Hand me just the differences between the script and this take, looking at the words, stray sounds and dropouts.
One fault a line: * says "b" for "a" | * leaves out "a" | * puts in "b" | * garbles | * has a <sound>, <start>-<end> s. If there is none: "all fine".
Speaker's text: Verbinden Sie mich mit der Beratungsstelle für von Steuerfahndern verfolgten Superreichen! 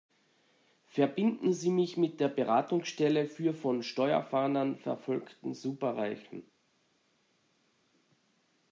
all fine